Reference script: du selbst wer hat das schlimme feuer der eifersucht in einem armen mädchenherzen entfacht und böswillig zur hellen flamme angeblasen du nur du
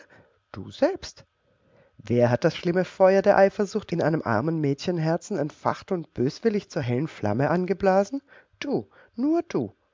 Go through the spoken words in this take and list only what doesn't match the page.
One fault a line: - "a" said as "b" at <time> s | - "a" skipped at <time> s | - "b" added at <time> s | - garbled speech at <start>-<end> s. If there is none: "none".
none